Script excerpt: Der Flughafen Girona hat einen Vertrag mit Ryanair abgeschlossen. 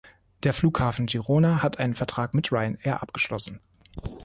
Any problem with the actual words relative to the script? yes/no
no